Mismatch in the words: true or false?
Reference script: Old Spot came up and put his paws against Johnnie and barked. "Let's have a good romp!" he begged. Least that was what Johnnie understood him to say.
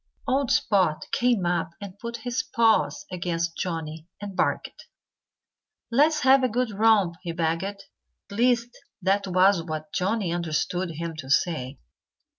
false